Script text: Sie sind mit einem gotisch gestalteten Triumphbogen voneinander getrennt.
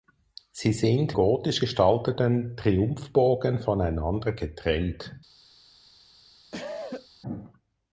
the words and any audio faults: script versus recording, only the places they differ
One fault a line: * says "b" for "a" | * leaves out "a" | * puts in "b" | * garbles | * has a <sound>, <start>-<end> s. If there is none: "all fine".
* leaves out "mit einem"
* has a cough, 6.5-7.1 s